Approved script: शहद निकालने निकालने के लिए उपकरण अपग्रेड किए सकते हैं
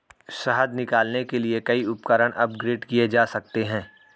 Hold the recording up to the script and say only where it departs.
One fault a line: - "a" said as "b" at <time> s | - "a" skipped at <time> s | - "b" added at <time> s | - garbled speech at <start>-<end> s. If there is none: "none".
- "निकालने" skipped at 1.2 s
- "कई" added at 1.6 s
- "जा" added at 3.1 s